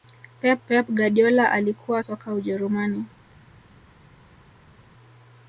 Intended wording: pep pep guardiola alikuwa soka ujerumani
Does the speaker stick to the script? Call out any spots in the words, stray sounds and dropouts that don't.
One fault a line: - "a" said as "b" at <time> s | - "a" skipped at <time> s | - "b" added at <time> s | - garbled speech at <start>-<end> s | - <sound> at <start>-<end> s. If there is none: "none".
none